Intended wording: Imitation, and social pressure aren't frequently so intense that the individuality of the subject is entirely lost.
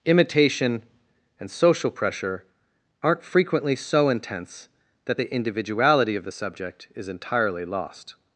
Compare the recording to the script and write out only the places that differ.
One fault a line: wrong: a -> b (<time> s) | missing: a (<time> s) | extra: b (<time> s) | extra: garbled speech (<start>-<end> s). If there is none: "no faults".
no faults